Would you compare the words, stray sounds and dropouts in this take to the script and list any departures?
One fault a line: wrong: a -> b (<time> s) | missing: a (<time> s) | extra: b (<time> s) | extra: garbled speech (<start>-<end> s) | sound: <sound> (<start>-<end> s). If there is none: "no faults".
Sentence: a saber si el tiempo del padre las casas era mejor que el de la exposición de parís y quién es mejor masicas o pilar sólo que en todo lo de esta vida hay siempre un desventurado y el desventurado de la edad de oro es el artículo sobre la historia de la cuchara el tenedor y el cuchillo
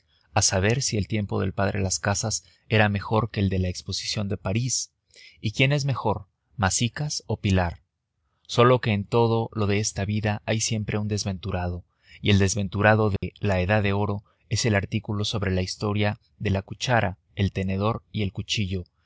sound: dropout (13.2-13.2 s)